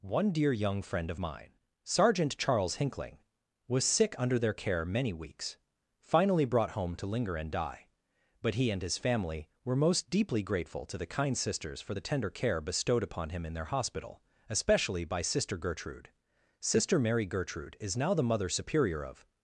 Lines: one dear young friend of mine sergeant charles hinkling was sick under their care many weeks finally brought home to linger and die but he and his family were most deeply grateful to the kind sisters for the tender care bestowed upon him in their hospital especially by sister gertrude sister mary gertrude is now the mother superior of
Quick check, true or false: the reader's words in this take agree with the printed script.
true